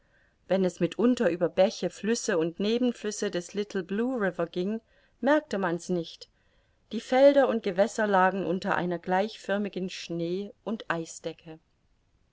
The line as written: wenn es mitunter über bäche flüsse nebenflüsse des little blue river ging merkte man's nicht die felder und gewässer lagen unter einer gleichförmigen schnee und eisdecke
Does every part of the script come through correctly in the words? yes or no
no